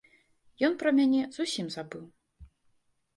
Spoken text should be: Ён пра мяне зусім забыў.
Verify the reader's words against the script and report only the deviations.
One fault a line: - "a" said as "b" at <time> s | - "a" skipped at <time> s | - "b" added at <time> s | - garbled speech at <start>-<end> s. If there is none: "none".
none